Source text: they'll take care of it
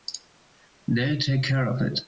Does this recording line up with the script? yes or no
yes